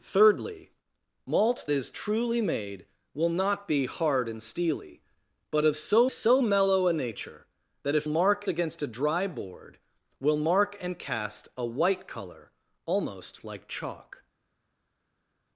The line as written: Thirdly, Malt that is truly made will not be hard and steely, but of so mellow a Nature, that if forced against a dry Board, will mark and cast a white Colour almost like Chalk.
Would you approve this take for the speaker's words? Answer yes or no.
no